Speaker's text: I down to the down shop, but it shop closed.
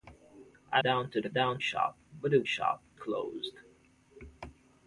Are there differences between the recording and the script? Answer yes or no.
no